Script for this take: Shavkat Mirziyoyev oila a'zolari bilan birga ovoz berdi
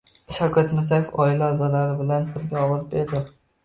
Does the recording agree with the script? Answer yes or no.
yes